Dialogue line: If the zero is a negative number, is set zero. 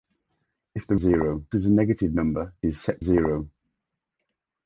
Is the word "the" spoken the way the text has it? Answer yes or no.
yes